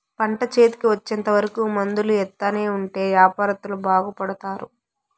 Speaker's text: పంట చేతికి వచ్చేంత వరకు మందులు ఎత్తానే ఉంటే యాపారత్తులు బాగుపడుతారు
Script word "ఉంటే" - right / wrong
right